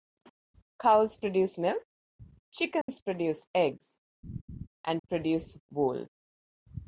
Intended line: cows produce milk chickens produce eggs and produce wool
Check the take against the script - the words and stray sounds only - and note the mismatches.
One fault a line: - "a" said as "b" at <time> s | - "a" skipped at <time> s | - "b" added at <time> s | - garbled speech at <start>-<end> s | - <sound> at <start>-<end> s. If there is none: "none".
- dropout at 2.8-2.9 s
- laugh at 4.2-4.7 s